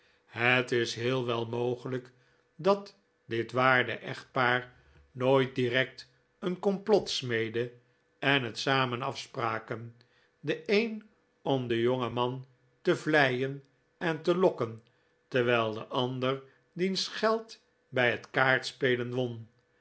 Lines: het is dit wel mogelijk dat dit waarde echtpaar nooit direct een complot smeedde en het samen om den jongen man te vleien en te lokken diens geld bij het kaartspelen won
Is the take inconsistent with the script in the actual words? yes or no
yes